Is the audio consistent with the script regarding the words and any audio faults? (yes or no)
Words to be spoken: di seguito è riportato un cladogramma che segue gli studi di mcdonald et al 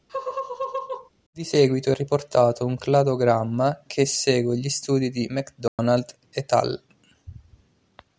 no